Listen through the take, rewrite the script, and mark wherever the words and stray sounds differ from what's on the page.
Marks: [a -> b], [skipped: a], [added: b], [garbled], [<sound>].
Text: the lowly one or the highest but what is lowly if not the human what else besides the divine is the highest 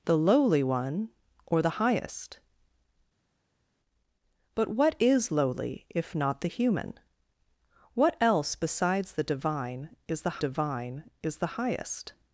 the lowly one or the highest but what is lowly if not the human what else besides the divine is the [added: divine is the] highest